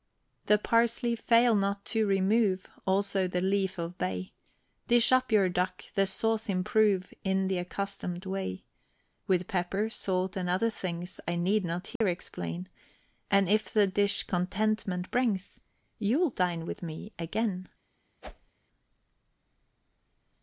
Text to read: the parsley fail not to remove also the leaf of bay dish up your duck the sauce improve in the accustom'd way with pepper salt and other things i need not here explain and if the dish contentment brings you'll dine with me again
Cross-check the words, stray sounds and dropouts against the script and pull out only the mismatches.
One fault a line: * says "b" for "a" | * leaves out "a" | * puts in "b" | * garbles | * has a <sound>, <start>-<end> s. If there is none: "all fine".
* has a dropout, 12.0-12.0 s
* has a whoosh, 18.2-18.5 s